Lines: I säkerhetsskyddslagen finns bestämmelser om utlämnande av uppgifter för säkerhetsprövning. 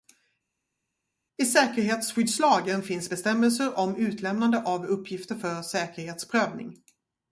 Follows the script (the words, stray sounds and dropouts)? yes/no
yes